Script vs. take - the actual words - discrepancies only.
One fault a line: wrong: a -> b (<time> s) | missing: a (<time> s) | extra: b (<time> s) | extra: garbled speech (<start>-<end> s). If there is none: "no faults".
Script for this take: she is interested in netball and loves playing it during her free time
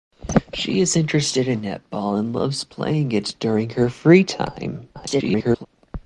extra: garbled speech (4.9-5.7 s)